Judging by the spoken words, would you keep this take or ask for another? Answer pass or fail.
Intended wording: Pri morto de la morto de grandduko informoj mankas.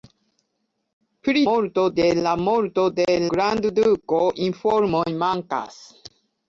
pass